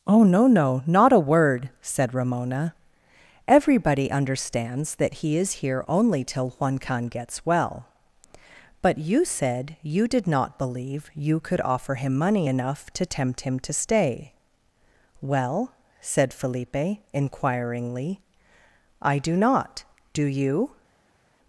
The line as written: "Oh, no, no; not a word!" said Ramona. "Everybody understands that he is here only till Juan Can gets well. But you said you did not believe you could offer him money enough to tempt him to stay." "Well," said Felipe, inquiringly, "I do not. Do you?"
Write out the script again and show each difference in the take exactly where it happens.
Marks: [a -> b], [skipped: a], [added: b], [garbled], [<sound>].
"Oh, no, no; not a word!" said Ramona. "Everybody understands that he is here only till Juan Can gets well. But you said you did not believe you could offer him money enough to tempt him to stay." "Well," said Felipe, inquiringly, "I do not. Do you?"